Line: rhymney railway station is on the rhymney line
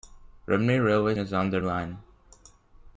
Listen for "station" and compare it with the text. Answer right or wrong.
wrong